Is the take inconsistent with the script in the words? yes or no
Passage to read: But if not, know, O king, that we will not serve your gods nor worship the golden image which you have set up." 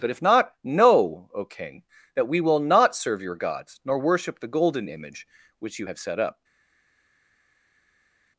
no